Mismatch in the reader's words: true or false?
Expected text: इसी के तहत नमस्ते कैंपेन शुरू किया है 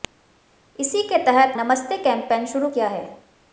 false